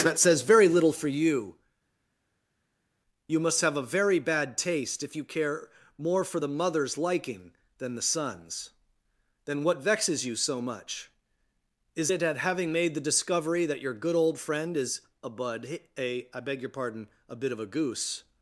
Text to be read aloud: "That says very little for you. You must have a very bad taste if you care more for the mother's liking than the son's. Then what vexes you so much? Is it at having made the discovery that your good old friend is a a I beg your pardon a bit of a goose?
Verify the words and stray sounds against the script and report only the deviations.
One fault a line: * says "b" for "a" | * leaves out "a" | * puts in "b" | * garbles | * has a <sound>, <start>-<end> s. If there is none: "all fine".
* puts in "bud"